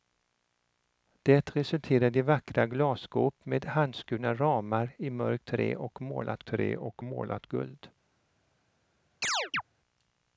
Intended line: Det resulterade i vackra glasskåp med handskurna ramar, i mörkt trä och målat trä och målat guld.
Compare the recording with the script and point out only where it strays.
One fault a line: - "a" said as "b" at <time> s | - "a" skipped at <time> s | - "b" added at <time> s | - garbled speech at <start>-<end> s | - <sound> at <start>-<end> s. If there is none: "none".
- chirp at 9.2-9.6 s